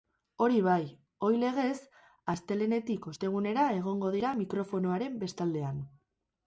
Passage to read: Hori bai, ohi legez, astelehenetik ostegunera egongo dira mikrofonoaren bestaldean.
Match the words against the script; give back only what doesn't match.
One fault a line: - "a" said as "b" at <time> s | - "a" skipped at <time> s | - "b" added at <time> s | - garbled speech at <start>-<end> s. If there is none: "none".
none